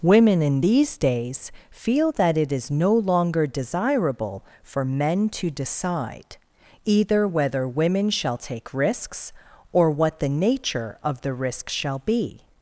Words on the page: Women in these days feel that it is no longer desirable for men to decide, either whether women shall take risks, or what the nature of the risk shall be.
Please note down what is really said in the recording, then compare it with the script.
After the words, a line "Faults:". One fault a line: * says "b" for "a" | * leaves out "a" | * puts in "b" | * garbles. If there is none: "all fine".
Women in these days feel that it is no longer desirable for men to decide, either whether women shall take risks, or what the nature of the risk shall be.
Faults:
all fine